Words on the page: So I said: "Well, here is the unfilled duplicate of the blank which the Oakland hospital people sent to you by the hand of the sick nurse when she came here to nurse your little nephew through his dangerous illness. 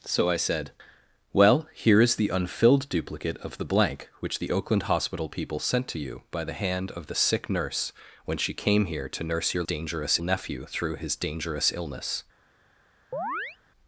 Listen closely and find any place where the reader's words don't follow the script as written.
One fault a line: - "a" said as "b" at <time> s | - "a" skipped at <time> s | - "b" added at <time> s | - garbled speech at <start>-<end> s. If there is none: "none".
- "little" said as "dangerous" at 9.6 s